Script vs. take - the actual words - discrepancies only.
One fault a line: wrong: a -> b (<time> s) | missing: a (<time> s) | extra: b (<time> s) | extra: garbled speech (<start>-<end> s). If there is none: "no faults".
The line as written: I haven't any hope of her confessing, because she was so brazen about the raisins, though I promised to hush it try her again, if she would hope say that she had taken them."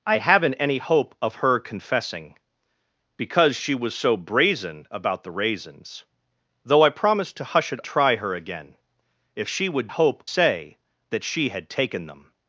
no faults